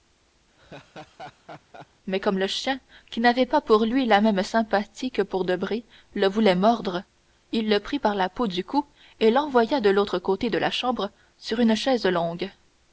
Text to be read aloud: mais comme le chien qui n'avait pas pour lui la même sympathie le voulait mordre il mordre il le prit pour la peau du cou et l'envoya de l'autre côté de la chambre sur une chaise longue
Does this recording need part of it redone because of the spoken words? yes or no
yes